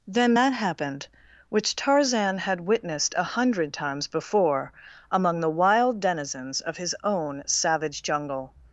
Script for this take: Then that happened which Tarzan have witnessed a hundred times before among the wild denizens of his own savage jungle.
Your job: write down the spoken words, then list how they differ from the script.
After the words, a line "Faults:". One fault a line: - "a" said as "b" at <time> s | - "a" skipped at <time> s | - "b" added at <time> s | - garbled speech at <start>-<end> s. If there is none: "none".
Then that happened which Tarzan had witnessed a hundred times before among the wild denizens of his own savage jungle.
Faults:
- "have" said as "had" at 2.4 s